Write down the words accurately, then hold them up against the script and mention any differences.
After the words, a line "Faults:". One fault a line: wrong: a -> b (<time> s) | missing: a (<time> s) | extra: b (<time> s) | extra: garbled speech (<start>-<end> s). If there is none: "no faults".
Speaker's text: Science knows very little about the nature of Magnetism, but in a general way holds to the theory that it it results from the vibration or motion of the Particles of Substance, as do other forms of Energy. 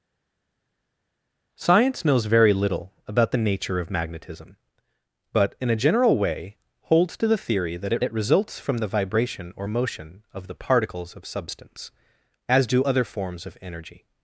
Science knows very little about the nature of Magnetism, but in a general way holds to the theory that it it results from the vibration or motion of the Particles of Substance, as do other forms of Energy.
Faults:
no faults